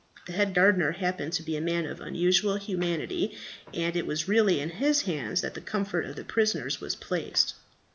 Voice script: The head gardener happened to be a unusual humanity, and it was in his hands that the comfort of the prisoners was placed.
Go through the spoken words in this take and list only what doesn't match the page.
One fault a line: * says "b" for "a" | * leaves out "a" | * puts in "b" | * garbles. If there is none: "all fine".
* puts in "man of"
* puts in "really"